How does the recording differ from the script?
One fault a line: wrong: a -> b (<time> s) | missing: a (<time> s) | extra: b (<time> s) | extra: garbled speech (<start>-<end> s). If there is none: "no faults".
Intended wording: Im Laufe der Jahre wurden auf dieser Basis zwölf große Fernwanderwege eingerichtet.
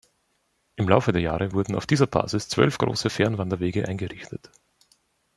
no faults